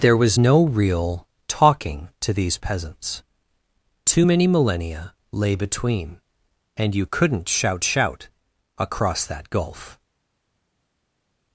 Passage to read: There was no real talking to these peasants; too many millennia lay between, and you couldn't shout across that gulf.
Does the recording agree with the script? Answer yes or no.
no